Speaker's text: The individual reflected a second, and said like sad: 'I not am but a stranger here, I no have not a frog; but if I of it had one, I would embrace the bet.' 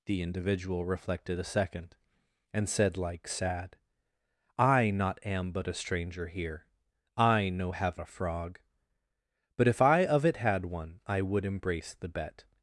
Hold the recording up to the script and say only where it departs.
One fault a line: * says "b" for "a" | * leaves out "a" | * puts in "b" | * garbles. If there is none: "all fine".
* leaves out "not"